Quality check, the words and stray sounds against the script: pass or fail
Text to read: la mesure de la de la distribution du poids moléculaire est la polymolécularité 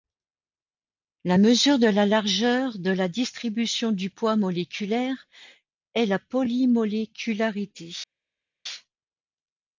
fail